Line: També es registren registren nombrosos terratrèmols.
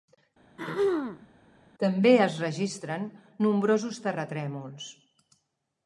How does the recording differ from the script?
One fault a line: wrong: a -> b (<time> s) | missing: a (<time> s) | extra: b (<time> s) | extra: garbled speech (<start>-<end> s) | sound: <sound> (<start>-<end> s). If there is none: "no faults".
sound: throat clearing (0.6-1.3 s)
missing: registren (3.1 s)